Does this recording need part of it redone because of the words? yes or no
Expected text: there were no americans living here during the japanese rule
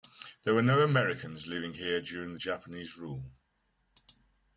no